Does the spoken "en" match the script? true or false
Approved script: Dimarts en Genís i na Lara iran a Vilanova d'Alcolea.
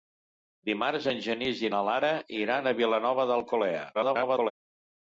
true